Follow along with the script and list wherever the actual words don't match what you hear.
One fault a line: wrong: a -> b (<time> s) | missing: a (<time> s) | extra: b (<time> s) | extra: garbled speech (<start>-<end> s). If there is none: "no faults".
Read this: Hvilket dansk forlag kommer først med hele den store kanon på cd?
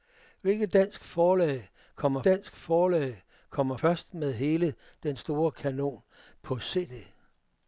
extra: dansk forlag kommer (2.2 s)